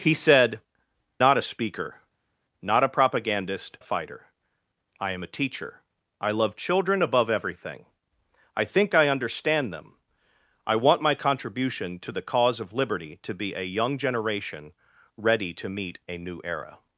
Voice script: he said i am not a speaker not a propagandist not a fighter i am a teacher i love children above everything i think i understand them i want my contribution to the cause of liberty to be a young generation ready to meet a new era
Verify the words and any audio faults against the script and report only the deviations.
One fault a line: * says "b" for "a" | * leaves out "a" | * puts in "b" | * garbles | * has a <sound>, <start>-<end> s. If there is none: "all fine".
* leaves out "i am"
* leaves out "not"